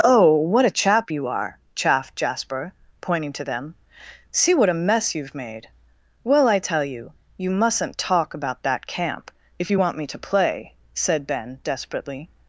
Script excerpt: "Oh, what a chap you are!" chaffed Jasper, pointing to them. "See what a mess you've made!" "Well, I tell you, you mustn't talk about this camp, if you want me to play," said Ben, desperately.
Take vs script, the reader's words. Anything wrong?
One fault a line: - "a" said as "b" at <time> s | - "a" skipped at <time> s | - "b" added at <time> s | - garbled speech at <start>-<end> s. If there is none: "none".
- "this" said as "that" at 8.6 s